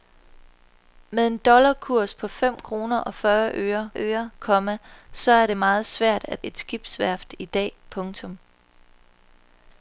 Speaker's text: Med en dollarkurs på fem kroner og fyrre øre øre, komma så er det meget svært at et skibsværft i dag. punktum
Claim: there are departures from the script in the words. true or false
false